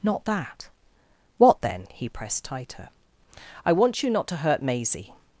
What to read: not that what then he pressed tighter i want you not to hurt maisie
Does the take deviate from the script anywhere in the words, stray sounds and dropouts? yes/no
no